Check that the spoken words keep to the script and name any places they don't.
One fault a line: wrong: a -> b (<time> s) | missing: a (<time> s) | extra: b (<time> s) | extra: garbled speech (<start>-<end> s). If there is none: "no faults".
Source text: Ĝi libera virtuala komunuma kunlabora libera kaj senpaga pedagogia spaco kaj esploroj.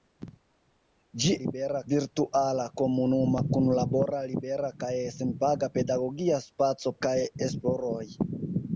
no faults